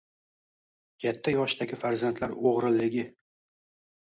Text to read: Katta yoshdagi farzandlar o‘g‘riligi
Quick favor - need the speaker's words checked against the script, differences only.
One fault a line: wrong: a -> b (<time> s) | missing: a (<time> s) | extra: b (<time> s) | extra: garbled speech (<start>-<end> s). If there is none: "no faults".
no faults